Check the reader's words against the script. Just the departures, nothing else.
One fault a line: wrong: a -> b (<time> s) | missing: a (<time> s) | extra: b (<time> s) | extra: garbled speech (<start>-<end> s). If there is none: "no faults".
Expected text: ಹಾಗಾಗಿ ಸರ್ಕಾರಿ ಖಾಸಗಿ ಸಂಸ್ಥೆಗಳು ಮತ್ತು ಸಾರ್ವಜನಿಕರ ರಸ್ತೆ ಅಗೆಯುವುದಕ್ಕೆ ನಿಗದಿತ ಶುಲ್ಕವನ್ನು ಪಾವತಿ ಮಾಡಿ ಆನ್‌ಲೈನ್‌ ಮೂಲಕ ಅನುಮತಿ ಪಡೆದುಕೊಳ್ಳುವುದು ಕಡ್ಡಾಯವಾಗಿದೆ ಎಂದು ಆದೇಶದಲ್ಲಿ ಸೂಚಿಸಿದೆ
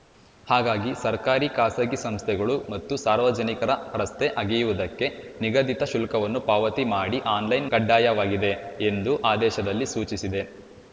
missing: ಮೂಲಕ ಅನುಮತಿ ಪಡೆದುಕೊಳ್ಳುವುದು (7.7 s)